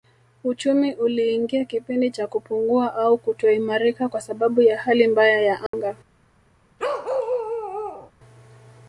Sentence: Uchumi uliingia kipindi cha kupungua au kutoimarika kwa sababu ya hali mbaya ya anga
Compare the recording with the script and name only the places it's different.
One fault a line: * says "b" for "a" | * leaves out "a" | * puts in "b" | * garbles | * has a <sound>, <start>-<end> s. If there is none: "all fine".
* has a dropout, 5.7-5.7 s
* has a bark, 6.8-8.1 s